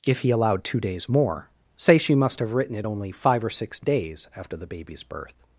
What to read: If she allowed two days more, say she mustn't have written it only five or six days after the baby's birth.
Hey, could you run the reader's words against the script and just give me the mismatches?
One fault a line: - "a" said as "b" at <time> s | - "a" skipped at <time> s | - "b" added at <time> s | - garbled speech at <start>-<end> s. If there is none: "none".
- "she" said as "he" at 0.2 s
- "mustn't" said as "must" at 2.1 s